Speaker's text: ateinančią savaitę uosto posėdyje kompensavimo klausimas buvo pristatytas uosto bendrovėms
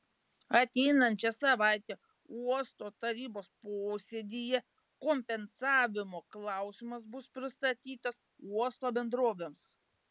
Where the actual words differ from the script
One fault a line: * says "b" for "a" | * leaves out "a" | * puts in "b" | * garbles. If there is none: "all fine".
* puts in "tarybos"
* says "bus" for "buvo"